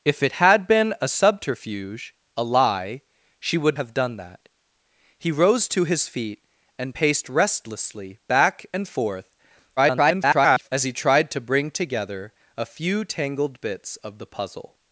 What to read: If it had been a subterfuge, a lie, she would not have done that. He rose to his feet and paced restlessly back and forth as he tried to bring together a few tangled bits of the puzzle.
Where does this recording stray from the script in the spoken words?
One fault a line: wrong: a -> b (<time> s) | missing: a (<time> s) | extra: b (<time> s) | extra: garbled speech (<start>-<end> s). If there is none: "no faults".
missing: not (3.8 s)
extra: garbled speech (9.8-10.7 s)